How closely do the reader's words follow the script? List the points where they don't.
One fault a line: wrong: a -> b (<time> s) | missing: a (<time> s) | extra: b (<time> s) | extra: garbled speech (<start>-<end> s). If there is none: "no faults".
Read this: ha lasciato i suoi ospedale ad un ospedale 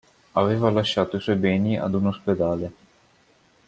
wrong: ha -> aveva (0.3 s)
wrong: ospedale -> beni (1.3 s)